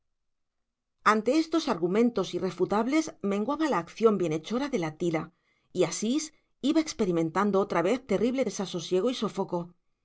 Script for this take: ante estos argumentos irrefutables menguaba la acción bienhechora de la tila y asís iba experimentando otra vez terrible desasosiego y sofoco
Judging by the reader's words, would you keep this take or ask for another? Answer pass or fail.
pass